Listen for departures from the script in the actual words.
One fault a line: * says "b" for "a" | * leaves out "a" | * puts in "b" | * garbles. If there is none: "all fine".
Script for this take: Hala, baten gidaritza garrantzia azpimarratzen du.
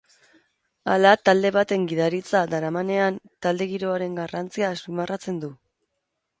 * puts in "talde"
* puts in "daramanean talde giroaren"